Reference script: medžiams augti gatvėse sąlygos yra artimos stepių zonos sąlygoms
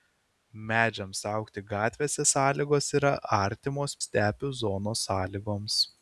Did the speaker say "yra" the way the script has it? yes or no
yes